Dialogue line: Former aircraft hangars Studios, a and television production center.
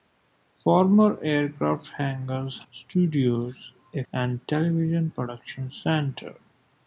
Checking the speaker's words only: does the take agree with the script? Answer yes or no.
yes